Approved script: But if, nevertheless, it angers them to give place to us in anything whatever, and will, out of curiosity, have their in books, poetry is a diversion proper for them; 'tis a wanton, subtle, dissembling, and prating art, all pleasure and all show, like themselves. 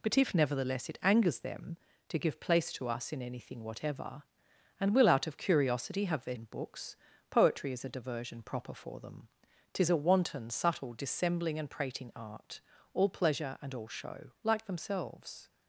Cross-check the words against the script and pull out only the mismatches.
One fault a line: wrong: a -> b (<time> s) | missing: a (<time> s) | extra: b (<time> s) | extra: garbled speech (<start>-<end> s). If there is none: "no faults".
no faults